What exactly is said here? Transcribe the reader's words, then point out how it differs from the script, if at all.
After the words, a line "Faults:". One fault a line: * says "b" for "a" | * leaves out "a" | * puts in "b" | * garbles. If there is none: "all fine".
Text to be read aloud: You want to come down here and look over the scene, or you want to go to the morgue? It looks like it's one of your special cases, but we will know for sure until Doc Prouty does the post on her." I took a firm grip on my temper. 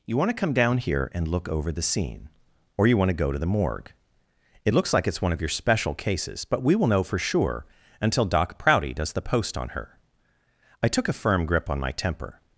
You want to come down here and look over the scene, or you want to go to the morgue? It looks like it's one of your special cases, but we will know for sure until Doc Prouty does the post on her." I took a firm grip on my temper.
Faults:
all fine